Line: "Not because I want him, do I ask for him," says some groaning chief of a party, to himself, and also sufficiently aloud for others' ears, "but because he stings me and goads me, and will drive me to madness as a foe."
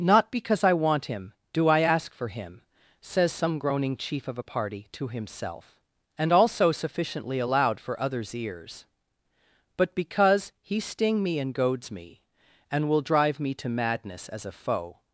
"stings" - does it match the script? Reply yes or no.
no